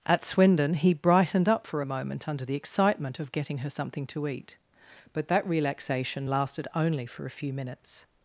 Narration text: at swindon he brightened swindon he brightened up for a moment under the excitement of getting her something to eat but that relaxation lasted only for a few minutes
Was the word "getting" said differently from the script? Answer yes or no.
no